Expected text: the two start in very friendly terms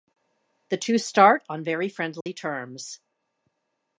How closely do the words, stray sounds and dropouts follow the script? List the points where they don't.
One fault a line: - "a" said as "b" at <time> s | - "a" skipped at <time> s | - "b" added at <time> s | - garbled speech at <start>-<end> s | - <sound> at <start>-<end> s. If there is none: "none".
- "in" said as "on" at 1.5 s
- dropout at 2.2-2.3 s